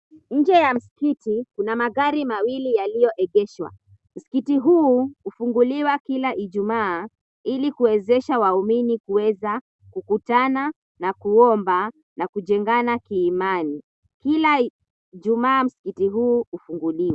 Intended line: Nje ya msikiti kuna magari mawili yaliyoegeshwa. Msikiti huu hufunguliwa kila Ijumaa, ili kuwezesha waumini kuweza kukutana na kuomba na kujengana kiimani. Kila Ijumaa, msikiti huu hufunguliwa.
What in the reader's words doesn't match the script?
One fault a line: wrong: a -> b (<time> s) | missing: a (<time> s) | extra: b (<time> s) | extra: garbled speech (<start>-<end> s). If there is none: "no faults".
no faults